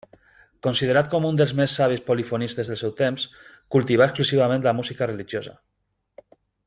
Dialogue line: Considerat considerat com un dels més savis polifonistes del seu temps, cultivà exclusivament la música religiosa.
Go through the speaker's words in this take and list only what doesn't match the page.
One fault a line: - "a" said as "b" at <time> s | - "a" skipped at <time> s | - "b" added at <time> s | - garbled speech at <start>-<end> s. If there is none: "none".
- "considerat" skipped at 1.1 s